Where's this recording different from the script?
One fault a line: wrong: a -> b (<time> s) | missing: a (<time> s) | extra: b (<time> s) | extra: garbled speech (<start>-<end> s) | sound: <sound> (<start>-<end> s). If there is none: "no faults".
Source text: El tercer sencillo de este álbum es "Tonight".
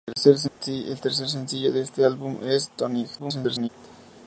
sound: dropout (0.5-0.6 s)
extra: garbled speech (3.2-3.7 s)